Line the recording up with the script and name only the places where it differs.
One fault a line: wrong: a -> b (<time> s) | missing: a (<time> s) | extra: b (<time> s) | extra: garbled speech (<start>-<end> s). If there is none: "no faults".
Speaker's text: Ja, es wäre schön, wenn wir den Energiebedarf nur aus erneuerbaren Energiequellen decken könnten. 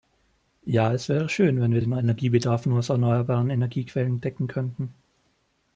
no faults